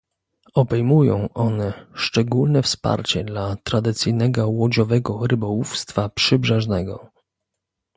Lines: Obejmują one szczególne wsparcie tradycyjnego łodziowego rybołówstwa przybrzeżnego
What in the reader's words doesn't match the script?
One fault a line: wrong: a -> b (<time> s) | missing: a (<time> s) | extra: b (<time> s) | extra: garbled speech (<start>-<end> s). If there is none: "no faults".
extra: dla (3.2 s)